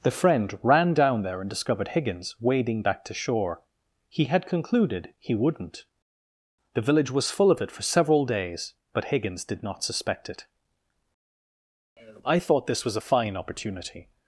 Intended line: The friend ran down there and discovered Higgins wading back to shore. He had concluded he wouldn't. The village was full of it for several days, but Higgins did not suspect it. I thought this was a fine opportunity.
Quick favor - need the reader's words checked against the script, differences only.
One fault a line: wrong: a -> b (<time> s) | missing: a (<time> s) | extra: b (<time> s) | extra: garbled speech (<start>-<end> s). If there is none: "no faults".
no faults